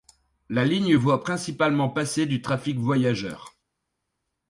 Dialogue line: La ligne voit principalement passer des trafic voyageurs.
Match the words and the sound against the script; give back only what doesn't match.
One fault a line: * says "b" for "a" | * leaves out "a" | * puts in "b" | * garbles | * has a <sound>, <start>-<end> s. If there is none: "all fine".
* says "du" for "des"